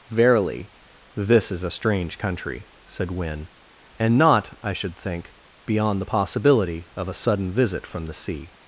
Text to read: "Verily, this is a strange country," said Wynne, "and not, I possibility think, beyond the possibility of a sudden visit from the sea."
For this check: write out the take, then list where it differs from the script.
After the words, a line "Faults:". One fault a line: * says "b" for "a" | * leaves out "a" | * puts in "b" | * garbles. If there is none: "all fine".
"Verily, this is a strange country," said Wynne, "and not, I should think, beyond the possibility of a sudden visit from the sea."
Faults:
* says "should" for "possibility"